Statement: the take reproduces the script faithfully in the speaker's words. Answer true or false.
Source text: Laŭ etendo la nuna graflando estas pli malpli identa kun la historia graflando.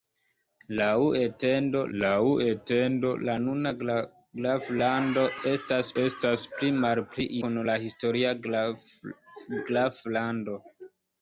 false